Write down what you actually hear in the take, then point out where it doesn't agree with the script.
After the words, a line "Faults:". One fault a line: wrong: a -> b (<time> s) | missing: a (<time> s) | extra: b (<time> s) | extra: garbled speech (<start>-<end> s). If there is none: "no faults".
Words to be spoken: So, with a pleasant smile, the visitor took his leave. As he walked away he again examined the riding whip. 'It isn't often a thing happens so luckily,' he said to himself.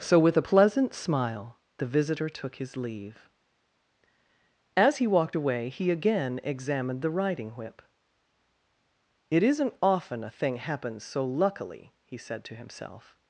So, with a pleasant smile, the visitor took his leave. As he walked away he again examined the riding whip. 'It isn't often a thing happens so luckily,' he said to himself.
Faults:
no faults